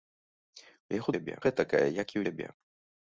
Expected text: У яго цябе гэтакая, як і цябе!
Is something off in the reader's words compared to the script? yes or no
no